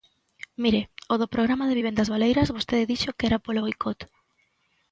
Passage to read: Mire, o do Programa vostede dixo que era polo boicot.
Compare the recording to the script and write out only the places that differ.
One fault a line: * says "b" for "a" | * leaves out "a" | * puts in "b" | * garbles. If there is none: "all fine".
* puts in "de vivendas baleiras"